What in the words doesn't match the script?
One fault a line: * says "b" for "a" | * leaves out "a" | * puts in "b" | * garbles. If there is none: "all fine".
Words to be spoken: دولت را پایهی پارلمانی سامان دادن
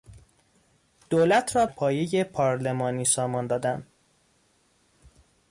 all fine